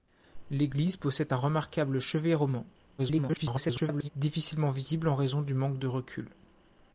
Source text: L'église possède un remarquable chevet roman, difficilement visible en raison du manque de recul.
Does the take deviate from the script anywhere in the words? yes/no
yes